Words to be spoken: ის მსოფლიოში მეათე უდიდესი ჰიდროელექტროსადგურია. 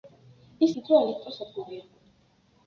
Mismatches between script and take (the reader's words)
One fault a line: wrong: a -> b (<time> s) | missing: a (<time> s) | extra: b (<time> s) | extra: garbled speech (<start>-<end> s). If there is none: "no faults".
missing: მსოფლიოში მეათე უდიდესი (0.7 s)